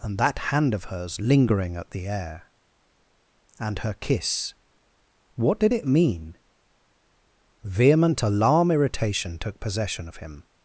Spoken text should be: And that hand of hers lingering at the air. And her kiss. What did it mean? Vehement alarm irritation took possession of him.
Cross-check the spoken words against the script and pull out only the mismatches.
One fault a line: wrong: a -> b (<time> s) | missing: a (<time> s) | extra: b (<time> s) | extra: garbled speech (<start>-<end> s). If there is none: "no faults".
no faults